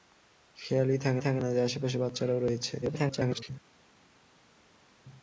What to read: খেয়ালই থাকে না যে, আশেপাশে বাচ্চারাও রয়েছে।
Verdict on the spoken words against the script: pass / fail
fail